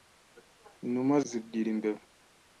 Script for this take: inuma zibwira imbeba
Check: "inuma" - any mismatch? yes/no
no